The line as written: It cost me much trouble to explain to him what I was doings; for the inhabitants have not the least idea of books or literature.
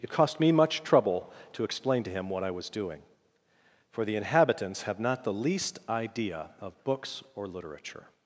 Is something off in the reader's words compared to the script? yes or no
yes